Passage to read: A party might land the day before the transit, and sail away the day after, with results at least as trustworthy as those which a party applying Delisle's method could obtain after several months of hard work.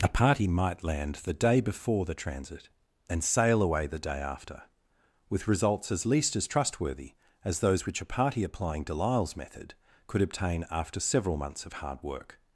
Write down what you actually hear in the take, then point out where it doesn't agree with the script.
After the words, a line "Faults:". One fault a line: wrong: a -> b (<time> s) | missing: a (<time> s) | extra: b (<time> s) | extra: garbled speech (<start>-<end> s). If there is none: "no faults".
A party might land the day before the transit, and sail away the day after, with results as least as trustworthy as those which a party applying Delisle's method could obtain after several months of hard work.
Faults:
wrong: at -> as (5.9 s)